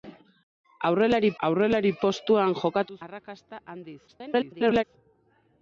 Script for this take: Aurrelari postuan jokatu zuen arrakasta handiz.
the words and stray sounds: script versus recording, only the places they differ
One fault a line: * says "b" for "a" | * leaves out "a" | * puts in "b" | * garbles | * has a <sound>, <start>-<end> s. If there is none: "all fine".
* puts in "aurrelari"
* leaves out "zuen"
* garbles